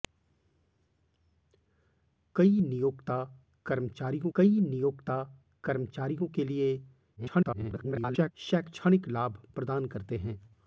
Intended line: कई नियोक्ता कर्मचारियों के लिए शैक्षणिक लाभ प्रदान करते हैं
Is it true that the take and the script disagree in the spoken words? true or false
true